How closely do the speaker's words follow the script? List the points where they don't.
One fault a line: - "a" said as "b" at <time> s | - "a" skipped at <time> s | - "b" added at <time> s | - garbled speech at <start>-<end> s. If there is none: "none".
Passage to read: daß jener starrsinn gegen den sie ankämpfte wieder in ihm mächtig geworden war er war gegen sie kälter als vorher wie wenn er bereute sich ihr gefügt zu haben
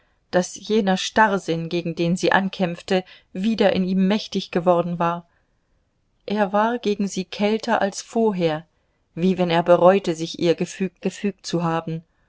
- "gefügt" added at 11.0 s